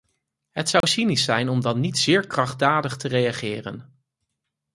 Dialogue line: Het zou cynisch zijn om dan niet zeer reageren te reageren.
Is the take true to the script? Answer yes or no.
no